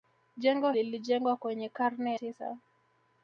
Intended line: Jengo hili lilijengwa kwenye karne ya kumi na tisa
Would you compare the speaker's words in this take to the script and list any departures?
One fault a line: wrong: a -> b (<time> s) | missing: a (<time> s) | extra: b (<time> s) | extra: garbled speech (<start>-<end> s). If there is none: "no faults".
missing: hili (0.7 s)
missing: ya kumi na (2.1 s)